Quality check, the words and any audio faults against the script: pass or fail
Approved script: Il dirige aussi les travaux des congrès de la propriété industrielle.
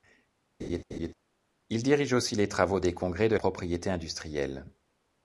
fail